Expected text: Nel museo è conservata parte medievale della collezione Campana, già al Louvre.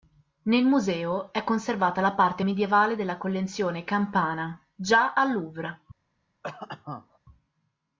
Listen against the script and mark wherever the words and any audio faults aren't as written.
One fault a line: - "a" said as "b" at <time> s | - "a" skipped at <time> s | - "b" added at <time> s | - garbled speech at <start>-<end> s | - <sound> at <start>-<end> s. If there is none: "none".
- "la" added at 2.0 s
- cough at 6.4-7.2 s